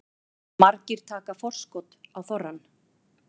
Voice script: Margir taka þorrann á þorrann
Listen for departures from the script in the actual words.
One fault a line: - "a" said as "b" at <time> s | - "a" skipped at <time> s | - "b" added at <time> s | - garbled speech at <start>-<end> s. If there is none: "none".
- "þorrann" said as "forskot" at 1.4 s